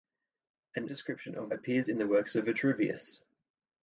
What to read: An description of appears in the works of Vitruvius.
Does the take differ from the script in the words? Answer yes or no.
no